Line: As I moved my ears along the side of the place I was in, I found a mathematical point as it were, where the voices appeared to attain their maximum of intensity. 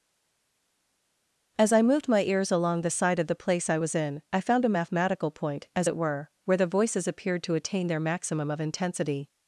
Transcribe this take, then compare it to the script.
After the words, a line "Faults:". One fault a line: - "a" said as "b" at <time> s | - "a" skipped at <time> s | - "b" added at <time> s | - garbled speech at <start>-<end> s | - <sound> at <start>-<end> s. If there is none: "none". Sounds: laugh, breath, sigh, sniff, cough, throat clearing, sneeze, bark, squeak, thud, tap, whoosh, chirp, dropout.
As I moved my ears along the side of the place I was in, I found a mathematical point as it were, where the voices appeared to attain their maximum of intensity.
Faults:
none